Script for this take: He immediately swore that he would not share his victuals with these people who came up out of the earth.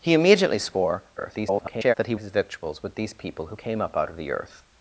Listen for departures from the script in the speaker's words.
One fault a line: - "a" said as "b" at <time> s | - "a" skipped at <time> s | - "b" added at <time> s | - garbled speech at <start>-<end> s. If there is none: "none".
- garbled speech at 1.2-1.9 s
- "would not share" skipped at 2.1 s